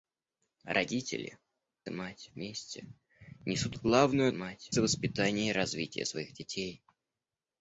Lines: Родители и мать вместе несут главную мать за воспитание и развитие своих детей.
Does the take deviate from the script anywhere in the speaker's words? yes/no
no